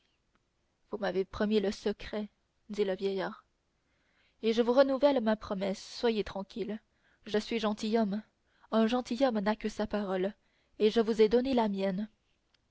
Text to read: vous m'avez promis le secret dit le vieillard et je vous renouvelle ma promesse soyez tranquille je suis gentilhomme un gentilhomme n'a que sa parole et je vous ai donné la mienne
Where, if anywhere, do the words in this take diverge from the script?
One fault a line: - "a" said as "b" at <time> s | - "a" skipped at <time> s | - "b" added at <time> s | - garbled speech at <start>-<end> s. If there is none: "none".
none